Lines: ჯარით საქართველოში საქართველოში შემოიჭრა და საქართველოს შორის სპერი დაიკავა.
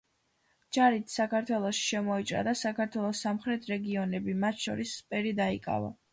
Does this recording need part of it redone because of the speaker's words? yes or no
yes